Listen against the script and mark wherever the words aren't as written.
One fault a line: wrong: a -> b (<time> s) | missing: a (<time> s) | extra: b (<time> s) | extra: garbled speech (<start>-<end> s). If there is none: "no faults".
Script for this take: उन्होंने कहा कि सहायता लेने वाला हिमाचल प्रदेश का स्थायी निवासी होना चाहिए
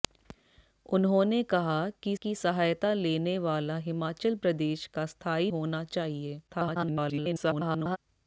extra: कि (2.2 s)
missing: निवासी (5.5 s)
extra: garbled speech (6.5-8.0 s)